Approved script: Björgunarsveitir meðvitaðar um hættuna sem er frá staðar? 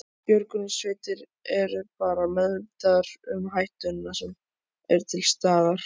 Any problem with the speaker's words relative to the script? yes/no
yes